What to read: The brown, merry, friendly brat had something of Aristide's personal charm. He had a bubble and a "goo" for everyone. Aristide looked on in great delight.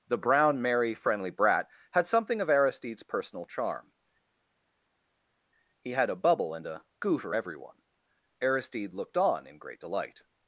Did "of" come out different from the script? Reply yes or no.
no